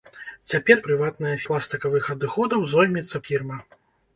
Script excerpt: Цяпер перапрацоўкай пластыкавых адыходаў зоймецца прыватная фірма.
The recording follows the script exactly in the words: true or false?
false